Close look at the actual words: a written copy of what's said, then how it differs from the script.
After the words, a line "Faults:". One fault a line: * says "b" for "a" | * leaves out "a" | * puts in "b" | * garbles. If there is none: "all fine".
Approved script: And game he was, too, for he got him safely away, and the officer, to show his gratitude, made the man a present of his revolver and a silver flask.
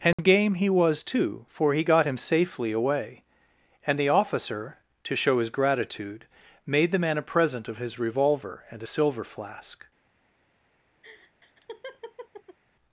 And game he was, too, for he got him safely away, and the officer, to show his gratitude, made the man a present of his revolver and a silver flask.
Faults:
all fine